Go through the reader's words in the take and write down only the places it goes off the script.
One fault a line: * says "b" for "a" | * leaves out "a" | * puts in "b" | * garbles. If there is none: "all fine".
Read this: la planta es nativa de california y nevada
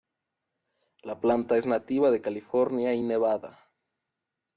all fine